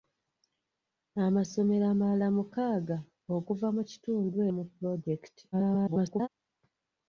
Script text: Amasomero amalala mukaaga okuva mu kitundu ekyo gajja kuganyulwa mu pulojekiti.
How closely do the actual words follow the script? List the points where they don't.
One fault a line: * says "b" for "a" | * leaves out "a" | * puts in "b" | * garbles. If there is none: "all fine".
* leaves out "ekyo gajja kuganyulwa"
* garbles